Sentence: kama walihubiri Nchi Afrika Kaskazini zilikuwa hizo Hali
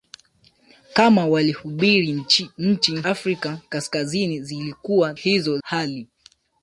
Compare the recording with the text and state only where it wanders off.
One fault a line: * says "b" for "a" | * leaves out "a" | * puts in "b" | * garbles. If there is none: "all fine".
all fine